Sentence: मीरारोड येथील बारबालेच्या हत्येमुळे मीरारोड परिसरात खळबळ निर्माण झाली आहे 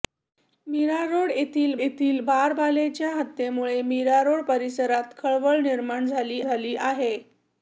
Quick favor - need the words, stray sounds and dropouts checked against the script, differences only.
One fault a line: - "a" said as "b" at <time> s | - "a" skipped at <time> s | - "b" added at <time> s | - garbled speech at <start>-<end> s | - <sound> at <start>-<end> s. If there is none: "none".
- "येथील" added at 1.7 s
- "झाली" added at 6.4 s